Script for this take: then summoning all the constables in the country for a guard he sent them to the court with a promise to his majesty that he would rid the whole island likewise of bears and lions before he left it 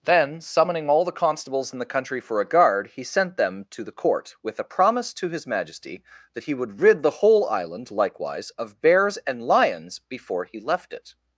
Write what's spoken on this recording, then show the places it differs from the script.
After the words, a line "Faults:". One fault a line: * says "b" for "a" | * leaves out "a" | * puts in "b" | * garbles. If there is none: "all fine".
then summoning all the constables in the country for a guard he sent them to the court with a promise to his majesty that he would rid the whole island likewise of bears and lions before he left it
Faults:
all fine